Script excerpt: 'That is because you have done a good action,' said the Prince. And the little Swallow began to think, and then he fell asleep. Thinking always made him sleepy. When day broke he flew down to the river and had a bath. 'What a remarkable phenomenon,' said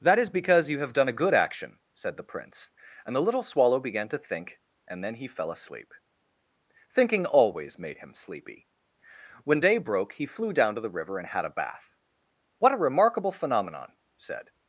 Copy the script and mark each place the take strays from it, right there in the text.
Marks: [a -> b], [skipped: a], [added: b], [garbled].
'That is because you have done a good action,' said the Prince. And the little Swallow began to think, and then he fell asleep. Thinking always made him sleepy. When day broke he flew down to the river and had a bath. 'What a remarkable phenomenon,' said